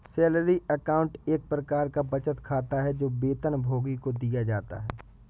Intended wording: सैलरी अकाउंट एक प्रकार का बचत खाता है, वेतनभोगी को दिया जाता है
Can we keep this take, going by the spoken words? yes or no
no